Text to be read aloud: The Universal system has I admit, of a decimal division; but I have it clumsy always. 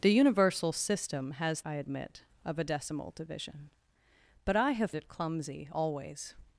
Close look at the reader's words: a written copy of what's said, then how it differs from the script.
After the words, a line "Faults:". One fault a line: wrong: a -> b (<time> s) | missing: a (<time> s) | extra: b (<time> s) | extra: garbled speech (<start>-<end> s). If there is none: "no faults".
The Universal system has I admit, of a decimal division; but I have it clumsy always.
Faults:
no faults